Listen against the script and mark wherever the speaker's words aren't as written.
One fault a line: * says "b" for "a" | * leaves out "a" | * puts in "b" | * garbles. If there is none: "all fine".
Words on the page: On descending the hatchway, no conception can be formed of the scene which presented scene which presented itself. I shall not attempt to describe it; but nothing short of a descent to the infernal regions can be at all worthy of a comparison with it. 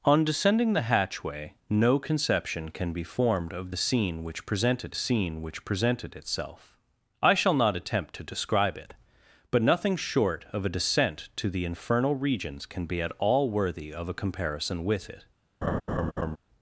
all fine